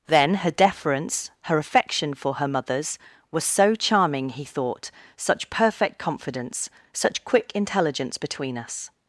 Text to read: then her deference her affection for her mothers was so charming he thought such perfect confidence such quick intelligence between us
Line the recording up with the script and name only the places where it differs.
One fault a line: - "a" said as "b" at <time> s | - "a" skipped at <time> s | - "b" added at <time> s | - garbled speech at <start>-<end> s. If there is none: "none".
none